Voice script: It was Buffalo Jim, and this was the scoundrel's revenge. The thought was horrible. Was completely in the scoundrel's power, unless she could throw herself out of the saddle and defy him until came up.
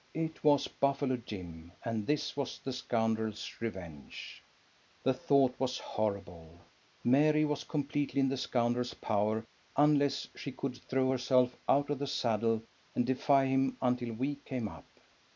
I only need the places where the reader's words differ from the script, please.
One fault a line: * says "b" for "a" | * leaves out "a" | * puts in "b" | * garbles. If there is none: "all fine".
* puts in "Mary"
* puts in "we"